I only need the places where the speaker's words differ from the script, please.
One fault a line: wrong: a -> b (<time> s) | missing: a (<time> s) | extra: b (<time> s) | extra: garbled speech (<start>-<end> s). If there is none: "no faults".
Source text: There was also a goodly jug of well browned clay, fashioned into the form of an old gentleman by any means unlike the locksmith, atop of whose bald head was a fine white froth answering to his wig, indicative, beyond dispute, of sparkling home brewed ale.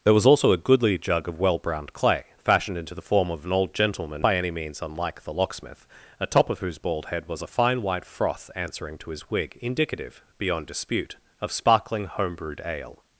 no faults